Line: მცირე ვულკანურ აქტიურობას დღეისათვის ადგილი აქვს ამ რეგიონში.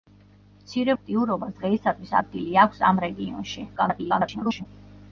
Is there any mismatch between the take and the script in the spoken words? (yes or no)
yes